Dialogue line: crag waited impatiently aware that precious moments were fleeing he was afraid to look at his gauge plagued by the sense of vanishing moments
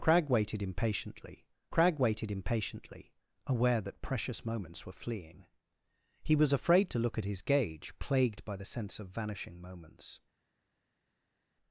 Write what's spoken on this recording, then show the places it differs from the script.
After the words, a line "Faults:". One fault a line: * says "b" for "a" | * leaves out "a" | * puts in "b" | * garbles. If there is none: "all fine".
crag waited impatiently crag waited impatiently aware that precious moments were fleeing he was afraid to look at his gauge plagued by the sense of vanishing moments
Faults:
* puts in "crag waited impatiently"